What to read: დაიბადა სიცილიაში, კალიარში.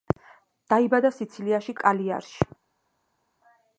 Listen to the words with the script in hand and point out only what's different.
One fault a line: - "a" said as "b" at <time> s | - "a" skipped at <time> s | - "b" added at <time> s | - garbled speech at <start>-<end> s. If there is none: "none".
none